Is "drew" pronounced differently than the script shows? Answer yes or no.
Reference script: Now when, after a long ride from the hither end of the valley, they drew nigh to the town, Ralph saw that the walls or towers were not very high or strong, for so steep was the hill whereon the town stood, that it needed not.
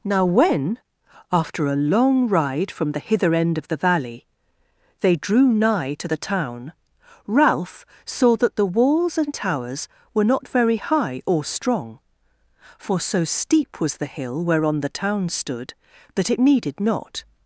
no